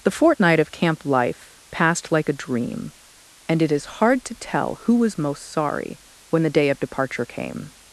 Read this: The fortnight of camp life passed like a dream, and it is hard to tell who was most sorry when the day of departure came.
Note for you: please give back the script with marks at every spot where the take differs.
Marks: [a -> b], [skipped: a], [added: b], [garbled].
The fortnight of camp life passed like a dream, and it is hard to tell who was most sorry when the day of departure came.